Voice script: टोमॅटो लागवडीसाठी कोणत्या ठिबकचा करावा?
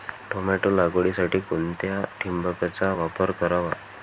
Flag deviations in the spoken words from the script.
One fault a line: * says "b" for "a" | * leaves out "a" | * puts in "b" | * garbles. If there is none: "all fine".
* puts in "वापर"